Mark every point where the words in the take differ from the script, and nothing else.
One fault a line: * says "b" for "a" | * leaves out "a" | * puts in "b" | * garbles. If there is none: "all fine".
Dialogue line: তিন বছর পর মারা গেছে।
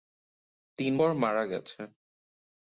* leaves out "বছর"